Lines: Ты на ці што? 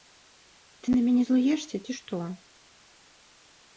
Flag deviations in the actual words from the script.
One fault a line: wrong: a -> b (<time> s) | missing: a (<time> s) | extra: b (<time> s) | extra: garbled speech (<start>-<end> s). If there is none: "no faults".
extra: мяне злуешся (1.1 s)